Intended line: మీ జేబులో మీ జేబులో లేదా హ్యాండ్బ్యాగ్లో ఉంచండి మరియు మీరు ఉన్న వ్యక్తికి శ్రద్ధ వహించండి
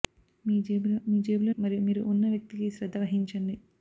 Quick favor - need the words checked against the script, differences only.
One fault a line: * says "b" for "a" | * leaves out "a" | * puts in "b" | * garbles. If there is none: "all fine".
* leaves out "లేదా హ్యాండ్బ్యాగ్లో ఉంచండి"